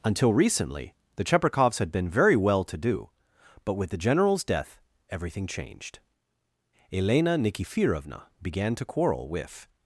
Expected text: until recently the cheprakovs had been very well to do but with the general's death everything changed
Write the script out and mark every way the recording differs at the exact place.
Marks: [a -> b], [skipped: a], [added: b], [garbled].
until recently the cheprakovs had been very well to do but with the general's death everything changed [added: elena nikifirovna began to quarrel with]